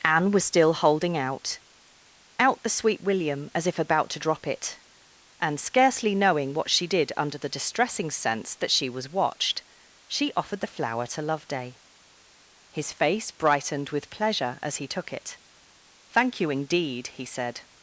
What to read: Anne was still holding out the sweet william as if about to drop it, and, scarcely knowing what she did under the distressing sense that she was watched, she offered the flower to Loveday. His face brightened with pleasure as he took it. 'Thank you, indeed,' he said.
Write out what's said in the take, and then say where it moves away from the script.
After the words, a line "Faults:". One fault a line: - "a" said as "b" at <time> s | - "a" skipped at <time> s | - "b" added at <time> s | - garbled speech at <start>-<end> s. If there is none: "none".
Anne was still holding out out the sweet william as if about to drop it, and, scarcely knowing what she did under the distressing sense that she was watched, she offered the flower to Loveday. His face brightened with pleasure as he took it. 'Thank you, indeed,' he said.
Faults:
- "out" added at 2.4 s